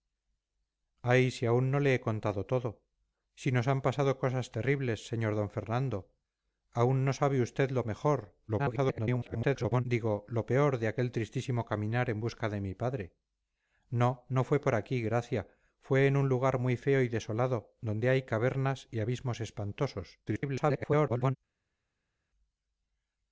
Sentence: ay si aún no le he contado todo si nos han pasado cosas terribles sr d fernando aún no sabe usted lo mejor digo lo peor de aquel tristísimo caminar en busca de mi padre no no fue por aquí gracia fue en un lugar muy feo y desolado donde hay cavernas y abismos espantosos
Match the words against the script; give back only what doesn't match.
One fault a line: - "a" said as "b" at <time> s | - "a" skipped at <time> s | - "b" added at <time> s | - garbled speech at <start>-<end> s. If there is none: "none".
- garbled speech at 8.5-9.9 s
- garbled speech at 20.3-21.4 s